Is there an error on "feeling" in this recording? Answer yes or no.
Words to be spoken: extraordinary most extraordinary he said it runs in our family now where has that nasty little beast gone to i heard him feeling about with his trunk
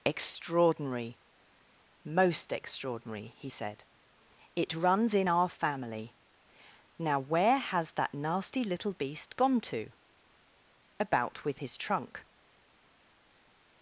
yes